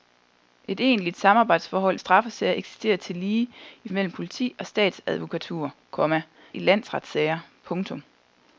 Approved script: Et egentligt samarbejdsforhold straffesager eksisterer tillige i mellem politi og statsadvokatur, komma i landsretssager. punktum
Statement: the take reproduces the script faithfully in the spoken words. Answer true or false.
true